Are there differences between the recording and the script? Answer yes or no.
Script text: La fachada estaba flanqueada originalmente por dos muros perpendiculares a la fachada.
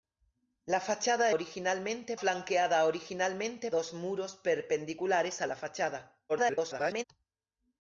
yes